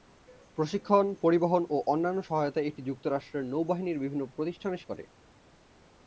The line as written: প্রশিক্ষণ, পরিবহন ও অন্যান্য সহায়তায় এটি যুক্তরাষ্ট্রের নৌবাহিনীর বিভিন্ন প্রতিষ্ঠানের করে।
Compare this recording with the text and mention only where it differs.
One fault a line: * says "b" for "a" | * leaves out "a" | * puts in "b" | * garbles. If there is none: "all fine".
all fine